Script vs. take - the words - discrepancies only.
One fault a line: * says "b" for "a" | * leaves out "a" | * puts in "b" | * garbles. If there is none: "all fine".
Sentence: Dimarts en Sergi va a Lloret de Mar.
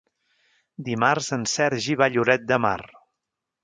all fine